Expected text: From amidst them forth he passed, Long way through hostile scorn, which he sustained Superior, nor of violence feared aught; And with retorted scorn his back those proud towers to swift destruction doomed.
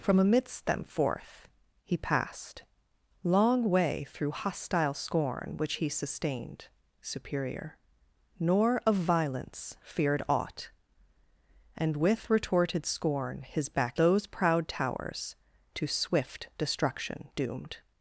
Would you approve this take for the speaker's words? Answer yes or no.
yes